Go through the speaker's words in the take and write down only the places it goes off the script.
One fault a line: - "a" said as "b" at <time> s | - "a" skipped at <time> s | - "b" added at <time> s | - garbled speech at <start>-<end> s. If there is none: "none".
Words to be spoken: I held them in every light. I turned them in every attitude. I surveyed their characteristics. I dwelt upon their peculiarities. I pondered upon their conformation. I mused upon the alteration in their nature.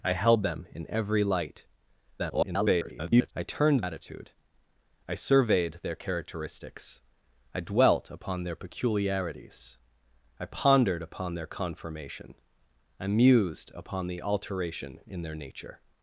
- garbled speech at 2.2-3.3 s
- "them in every" skipped at 3.8 s